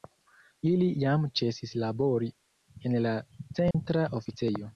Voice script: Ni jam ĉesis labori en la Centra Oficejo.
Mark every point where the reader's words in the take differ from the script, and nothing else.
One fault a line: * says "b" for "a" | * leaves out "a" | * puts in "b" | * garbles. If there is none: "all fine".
* says "Ili" for "Ni"